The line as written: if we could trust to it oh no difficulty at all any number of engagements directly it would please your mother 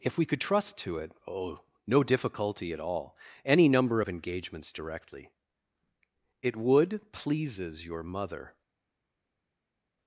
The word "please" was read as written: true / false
false